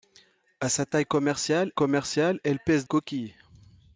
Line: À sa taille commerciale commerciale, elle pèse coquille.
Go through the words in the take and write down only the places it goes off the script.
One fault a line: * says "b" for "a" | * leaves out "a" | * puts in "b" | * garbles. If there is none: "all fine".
all fine